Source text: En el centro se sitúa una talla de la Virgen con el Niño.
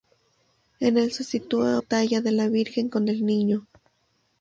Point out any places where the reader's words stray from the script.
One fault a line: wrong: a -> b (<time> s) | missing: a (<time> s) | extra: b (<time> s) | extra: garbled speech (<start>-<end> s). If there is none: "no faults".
missing: centro (1.1 s)
missing: una (1.8 s)